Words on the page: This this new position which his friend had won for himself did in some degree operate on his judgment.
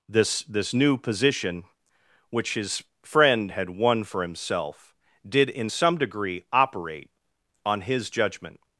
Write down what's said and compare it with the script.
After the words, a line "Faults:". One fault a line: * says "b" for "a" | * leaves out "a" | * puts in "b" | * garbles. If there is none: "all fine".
This this new position which his friend had won for himself did in some degree operate on his judgment.
Faults:
all fine